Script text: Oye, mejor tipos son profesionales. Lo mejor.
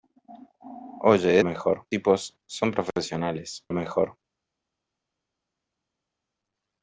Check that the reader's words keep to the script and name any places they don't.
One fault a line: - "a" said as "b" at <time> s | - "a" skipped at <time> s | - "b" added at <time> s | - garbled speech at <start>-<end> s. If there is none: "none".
none